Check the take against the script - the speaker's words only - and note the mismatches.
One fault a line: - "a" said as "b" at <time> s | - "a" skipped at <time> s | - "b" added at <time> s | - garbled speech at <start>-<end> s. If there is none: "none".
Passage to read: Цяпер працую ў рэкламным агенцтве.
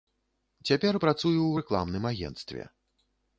none